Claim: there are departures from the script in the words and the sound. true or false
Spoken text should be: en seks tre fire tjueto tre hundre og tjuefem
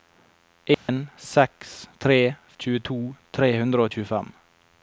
true